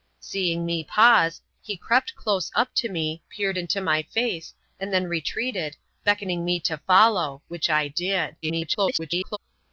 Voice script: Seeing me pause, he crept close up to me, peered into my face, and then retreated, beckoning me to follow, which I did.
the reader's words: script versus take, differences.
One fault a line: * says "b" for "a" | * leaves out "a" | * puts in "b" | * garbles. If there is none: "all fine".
* garbles